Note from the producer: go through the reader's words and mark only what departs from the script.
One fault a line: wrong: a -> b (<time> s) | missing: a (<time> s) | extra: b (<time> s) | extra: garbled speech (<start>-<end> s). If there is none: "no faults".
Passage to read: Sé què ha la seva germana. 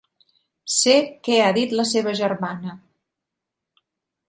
extra: dit (1.6 s)